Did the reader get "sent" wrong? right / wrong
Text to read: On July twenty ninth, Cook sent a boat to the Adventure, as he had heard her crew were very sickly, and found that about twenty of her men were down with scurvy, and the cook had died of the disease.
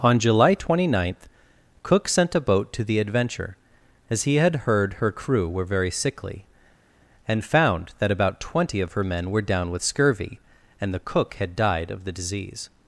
right